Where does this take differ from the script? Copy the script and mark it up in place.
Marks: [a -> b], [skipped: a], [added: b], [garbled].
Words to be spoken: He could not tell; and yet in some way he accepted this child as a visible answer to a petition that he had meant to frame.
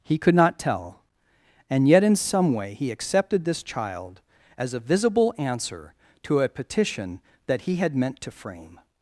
He could not tell; and yet in some way he accepted this child as a visible answer to a petition that he had meant to frame.